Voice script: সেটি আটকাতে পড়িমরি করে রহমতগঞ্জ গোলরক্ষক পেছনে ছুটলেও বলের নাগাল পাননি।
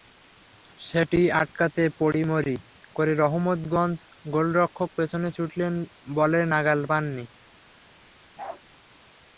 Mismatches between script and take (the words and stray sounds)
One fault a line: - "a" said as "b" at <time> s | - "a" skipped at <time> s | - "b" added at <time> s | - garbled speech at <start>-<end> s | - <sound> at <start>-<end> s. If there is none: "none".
- bark at 8.4-8.6 s